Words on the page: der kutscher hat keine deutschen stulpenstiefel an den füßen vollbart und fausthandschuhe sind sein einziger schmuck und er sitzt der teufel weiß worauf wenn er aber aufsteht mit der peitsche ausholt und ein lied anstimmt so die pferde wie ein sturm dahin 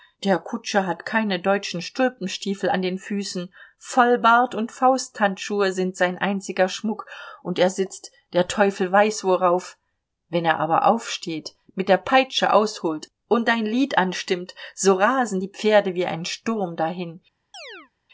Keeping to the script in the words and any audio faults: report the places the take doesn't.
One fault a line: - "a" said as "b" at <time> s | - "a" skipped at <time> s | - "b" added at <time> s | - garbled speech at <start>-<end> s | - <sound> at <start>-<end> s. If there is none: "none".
- "rasen" added at 14.9 s
- chirp at 17.5-17.9 s